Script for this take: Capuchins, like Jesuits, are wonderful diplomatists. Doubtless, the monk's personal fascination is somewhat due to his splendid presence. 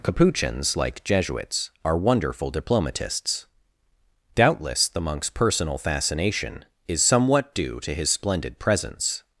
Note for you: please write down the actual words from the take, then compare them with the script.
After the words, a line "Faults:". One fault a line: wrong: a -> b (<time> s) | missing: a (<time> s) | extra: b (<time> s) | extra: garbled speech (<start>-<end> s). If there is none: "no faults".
Capuchins, like Jesuits, are wonderful diplomatists. Doubtless, the monk's personal fascination is somewhat due to his splendid presence.
Faults:
no faults